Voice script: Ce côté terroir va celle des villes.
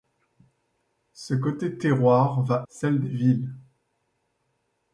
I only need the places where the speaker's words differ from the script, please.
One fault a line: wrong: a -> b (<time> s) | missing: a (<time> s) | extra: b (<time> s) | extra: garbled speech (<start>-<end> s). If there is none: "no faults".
no faults